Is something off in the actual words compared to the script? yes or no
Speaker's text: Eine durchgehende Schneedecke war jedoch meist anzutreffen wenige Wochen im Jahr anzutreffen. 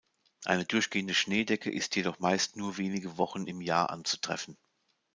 yes